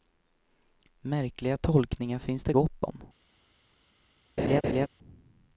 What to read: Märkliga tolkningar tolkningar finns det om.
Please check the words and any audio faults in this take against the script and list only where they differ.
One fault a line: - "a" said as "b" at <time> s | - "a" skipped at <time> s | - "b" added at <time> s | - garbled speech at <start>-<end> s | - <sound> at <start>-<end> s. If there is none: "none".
- "tolkningar" skipped at 2.2 s
- "gott" added at 2.5 s
- laugh at 4.4-4.9 s